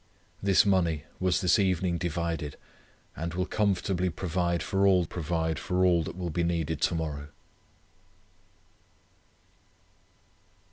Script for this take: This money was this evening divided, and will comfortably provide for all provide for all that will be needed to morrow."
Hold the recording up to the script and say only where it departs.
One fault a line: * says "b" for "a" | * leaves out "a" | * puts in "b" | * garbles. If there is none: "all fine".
all fine